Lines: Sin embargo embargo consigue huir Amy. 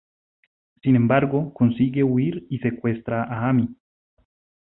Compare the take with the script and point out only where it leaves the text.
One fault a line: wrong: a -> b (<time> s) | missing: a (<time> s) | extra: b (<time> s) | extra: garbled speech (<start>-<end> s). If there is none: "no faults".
missing: embargo (1.5 s)
extra: y secuestra a (2.5 s)